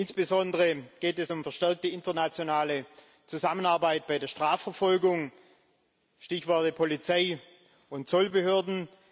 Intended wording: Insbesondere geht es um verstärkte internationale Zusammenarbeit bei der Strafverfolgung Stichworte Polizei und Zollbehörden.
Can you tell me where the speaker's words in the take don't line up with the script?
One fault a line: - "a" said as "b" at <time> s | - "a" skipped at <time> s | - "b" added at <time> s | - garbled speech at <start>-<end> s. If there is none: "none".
none